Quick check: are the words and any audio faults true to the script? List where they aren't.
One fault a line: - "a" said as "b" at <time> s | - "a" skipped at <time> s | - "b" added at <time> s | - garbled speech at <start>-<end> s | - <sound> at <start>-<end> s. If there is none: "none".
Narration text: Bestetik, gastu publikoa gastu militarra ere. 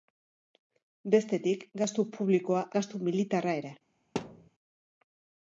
- thud at 4.2-4.5 s